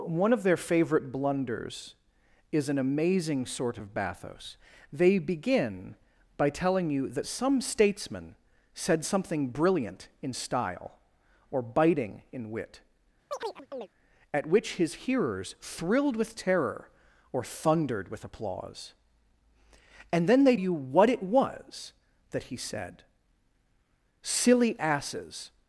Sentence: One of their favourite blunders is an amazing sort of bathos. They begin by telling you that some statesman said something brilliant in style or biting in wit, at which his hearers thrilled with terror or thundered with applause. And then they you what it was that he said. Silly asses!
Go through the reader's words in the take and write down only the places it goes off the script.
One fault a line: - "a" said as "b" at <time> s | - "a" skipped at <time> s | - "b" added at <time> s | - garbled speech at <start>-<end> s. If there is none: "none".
none